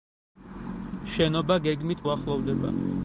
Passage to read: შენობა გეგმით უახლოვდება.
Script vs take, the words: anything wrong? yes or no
no